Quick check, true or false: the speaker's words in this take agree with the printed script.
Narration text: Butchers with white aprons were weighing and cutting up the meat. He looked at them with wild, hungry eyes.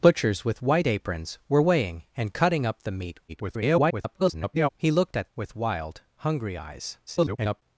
false